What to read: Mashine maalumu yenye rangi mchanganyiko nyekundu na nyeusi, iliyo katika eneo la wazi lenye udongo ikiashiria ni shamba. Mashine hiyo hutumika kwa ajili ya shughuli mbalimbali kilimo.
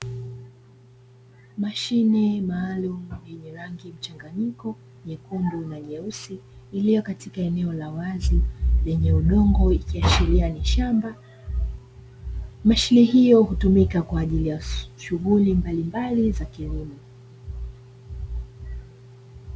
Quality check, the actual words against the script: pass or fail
fail